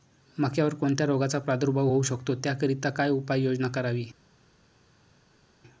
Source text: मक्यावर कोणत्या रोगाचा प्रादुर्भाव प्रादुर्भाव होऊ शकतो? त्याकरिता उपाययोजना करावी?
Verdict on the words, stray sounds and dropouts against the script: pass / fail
fail